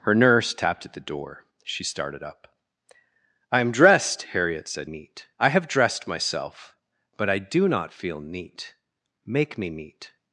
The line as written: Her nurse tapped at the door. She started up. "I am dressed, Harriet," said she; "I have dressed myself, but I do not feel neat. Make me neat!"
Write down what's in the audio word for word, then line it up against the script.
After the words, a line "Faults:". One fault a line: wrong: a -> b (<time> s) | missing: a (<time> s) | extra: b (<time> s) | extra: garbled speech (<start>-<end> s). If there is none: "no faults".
Her nurse tapped at the door. She started up. "I am dressed, Harriet," said neat; "I have dressed myself, but I do not feel neat. Make me neat!"
Faults:
wrong: she -> neat (4.8 s)